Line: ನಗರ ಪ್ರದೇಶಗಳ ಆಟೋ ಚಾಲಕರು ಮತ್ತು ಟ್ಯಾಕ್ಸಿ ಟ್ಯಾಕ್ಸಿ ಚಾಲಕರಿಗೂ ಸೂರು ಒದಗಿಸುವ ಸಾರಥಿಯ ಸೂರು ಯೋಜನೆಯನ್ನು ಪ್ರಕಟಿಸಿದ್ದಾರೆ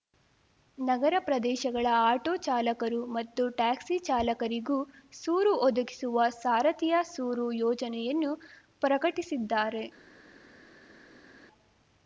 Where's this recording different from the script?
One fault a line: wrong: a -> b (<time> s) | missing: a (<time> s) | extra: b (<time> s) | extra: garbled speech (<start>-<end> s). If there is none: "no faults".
missing: ಟ್ಯಾಕ್ಸಿ (4.0 s)